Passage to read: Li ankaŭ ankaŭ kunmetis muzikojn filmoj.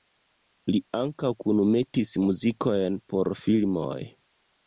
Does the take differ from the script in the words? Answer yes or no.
yes